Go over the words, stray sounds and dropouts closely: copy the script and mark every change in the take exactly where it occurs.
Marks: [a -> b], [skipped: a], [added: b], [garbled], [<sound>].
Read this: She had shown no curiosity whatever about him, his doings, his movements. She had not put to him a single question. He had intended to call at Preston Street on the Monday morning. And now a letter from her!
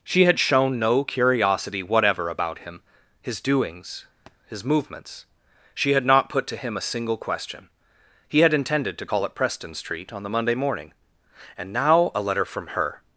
She had shown no curiosity whatever about him, his doings, [thud] his movements. She had not put to him a single question. He had intended to call at Preston Street on the Monday morning. And now a letter from her!